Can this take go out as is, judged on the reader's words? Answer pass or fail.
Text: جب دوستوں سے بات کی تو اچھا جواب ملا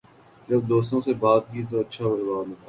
pass